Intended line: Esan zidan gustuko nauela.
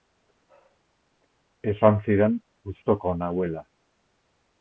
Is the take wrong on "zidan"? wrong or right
right